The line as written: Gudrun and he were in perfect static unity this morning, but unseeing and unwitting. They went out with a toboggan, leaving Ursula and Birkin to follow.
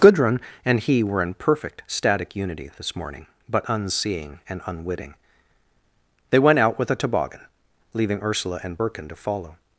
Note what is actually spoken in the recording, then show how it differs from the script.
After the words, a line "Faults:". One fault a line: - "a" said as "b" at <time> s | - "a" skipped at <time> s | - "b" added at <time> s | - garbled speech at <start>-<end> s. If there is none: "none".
Gudrun and he were in perfect static unity this morning, but unseeing and unwitting. They went out with a toboggan, leaving Ursula and Birkin to follow.
Faults:
none